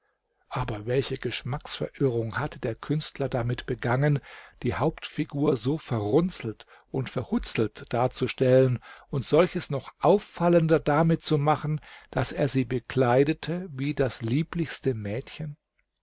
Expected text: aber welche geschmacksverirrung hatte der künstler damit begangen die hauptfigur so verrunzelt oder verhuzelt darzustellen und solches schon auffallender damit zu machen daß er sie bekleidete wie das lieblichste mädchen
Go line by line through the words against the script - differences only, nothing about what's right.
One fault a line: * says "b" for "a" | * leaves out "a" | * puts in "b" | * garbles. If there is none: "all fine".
* says "und" for "oder"
* says "noch" for "schon"